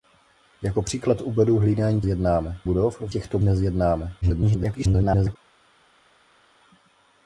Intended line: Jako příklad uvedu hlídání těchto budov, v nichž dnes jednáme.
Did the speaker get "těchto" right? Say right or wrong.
wrong